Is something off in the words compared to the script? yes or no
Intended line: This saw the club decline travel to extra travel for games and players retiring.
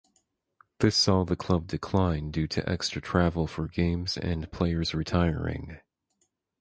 yes